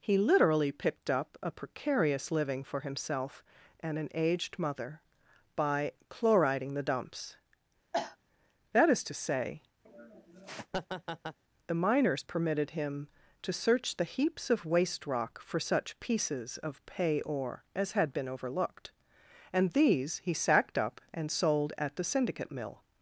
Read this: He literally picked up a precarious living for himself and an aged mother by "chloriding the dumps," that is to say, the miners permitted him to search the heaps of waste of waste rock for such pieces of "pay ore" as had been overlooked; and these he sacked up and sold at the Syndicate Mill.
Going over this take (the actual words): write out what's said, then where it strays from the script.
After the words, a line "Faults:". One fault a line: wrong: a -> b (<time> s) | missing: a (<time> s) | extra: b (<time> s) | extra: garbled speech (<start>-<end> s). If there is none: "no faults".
He literally picked up a precarious living for himself and an aged mother by "chloriding the dumps," that is to say, the miners permitted him to search the heaps of waste rock for such pieces of "pay ore" as had been overlooked; and these he sacked up and sold at the Syndicate Mill.
Faults:
missing: of waste (15.1 s)